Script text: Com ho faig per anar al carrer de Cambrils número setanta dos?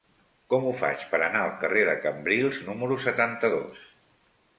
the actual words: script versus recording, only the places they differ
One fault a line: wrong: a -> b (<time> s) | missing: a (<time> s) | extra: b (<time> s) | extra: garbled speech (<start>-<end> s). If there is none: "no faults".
no faults